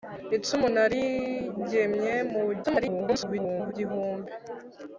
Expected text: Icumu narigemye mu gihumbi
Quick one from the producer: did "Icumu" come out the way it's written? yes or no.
yes